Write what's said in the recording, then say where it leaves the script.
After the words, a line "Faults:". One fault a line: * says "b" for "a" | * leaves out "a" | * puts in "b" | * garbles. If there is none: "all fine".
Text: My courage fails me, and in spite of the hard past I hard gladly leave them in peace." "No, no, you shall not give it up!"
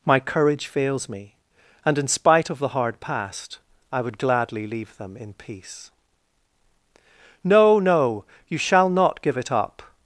My courage fails me, and in spite of the hard past I would gladly leave them in peace." "No, no, you shall not give it up!"
Faults:
* says "would" for "hard"